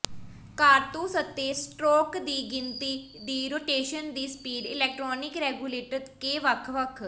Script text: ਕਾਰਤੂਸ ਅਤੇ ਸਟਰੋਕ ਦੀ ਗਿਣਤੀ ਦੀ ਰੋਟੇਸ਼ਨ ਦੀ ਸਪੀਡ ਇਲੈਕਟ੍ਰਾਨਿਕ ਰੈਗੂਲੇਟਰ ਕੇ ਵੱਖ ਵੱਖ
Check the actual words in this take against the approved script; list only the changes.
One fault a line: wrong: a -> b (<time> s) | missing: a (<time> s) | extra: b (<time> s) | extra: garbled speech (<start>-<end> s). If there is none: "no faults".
no faults